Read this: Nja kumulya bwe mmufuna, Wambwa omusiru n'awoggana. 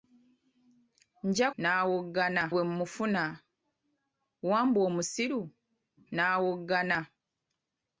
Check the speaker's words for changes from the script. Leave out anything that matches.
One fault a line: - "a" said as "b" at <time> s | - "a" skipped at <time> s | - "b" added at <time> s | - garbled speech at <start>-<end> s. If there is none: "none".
- "kumulya" said as "n'awoggana" at 1.6 s